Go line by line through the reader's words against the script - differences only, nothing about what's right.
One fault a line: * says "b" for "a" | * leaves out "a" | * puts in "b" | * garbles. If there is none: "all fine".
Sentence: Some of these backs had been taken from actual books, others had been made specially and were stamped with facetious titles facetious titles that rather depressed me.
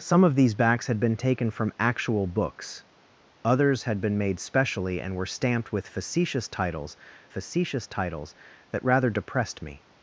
all fine